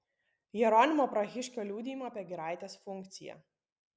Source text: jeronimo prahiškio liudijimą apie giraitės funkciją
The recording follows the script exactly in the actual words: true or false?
true